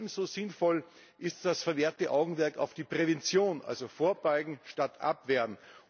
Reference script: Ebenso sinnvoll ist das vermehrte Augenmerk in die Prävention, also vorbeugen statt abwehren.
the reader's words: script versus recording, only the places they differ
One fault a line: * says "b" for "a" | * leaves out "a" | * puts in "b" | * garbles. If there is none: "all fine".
* says "auf" for "in"